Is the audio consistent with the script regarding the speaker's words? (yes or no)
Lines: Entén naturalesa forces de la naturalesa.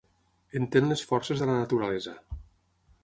no